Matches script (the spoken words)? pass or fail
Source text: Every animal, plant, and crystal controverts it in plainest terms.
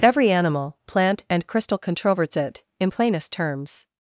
pass